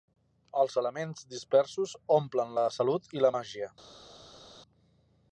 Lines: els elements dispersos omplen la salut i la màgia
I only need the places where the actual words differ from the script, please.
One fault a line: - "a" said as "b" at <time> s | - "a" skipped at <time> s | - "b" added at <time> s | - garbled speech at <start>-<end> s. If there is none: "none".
none